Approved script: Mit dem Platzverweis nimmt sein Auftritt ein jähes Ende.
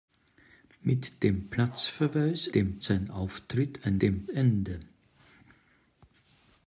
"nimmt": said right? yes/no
no